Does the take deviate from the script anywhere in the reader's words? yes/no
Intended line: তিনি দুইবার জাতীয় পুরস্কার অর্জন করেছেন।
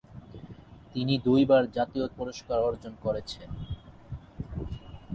no